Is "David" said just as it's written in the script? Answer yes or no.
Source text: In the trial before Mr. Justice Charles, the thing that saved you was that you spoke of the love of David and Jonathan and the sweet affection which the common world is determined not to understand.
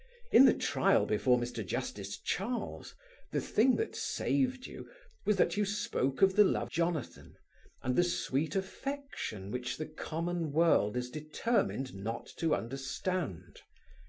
no